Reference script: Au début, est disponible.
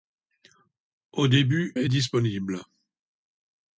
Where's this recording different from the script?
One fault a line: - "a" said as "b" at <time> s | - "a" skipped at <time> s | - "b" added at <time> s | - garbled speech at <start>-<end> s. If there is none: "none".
none